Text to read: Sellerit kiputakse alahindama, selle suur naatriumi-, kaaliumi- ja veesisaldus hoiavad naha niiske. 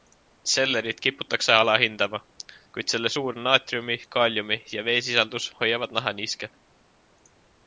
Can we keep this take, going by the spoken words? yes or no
no